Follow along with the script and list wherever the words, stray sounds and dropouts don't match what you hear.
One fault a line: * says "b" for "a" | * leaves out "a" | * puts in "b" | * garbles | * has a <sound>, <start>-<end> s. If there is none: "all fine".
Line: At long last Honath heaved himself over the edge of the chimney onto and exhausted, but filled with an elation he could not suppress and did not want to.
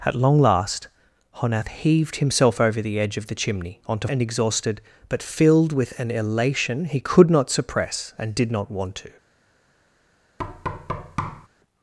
* has a thud, 10.4-11.5 s